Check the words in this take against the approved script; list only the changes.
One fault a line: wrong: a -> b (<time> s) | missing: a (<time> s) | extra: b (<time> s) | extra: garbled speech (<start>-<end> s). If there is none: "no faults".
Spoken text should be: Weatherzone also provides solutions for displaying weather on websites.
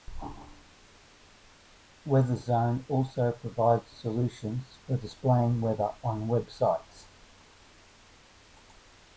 no faults